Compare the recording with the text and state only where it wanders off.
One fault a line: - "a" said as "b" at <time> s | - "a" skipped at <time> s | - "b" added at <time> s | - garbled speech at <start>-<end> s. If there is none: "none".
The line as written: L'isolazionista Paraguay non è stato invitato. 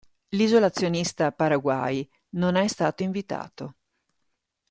none